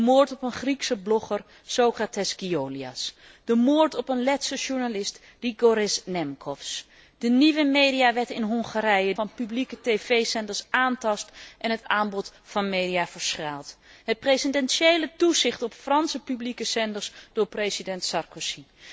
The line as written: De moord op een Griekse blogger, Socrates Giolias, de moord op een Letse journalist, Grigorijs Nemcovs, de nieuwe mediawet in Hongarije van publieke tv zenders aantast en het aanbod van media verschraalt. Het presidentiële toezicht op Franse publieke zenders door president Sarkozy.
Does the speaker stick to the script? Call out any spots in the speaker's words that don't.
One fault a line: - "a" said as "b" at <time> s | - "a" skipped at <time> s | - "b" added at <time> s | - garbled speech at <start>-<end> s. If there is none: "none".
none